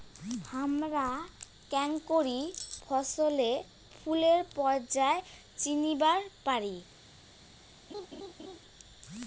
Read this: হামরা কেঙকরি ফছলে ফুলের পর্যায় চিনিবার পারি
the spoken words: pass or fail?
pass